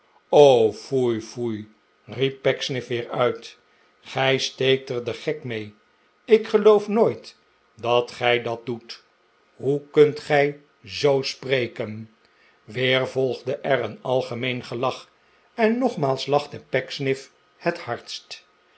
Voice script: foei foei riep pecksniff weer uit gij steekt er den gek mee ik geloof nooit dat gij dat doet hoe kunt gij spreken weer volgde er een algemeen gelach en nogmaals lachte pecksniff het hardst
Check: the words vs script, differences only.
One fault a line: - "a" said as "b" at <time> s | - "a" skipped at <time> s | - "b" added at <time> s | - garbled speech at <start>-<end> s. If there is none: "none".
- "zoo" added at 10.8 s